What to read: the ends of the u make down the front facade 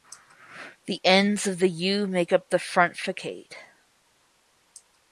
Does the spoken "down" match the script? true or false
false